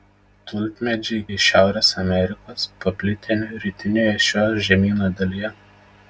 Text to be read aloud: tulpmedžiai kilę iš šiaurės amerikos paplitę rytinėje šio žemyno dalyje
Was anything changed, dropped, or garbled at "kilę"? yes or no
yes